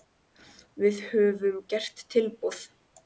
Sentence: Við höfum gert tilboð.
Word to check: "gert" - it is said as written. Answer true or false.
true